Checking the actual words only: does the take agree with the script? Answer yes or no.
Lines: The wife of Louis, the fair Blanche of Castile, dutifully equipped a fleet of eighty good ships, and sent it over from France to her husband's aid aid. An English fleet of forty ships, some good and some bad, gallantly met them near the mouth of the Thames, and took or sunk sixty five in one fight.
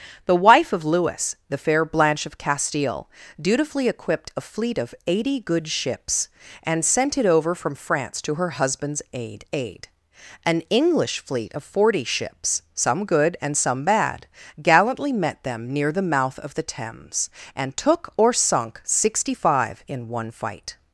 yes